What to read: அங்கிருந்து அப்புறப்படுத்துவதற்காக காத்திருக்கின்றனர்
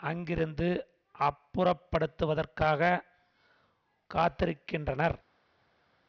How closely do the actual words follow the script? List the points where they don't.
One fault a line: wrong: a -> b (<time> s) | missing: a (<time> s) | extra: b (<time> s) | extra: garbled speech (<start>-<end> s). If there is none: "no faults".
no faults